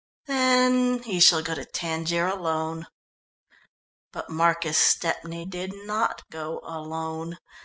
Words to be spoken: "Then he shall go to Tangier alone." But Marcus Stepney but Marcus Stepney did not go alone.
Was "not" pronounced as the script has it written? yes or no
yes